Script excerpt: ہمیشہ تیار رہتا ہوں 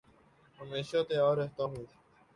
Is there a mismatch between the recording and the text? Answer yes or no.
no